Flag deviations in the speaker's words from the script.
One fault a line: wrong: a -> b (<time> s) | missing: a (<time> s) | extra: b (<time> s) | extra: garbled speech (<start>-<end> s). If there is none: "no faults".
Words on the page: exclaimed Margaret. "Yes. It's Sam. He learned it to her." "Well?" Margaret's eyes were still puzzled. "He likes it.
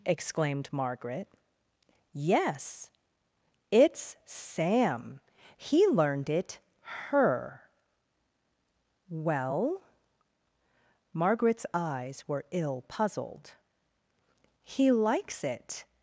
missing: to (6.6 s)
wrong: still -> ill (12.5 s)